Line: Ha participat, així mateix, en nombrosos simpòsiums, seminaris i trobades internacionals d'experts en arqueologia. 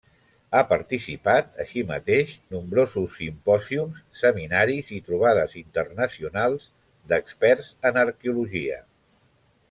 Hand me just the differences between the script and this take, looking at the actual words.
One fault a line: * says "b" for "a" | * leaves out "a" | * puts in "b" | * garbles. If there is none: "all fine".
* leaves out "en"